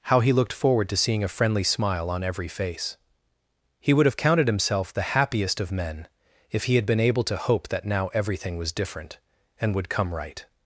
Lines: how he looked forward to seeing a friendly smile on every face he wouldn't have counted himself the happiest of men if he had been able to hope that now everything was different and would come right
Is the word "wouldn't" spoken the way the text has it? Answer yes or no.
no